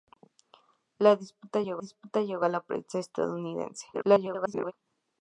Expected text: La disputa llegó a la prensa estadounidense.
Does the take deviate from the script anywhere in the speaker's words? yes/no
yes